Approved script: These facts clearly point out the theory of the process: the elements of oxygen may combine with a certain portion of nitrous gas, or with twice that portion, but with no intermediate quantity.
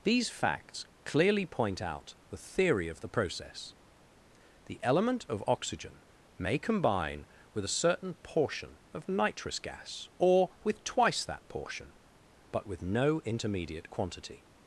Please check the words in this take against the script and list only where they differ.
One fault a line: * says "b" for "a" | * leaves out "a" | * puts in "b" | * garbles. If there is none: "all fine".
* says "element" for "elements"